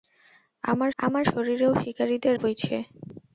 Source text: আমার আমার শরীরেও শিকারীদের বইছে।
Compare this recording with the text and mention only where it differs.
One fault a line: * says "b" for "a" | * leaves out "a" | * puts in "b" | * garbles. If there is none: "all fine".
all fine